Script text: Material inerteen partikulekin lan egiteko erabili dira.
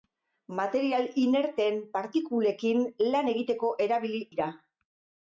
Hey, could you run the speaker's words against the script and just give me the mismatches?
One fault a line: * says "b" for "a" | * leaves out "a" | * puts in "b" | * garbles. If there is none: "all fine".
all fine